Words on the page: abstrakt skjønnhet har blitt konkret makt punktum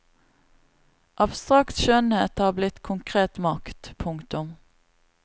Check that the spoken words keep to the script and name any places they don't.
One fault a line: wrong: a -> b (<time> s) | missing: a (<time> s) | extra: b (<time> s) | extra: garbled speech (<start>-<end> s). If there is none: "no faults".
no faults